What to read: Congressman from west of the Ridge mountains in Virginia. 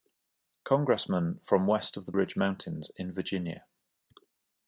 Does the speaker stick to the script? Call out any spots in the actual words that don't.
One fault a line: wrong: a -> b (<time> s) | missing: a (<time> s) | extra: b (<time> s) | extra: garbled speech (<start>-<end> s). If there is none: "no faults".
no faults